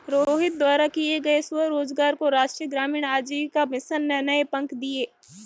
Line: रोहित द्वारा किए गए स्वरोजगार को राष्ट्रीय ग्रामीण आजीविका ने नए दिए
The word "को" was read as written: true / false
true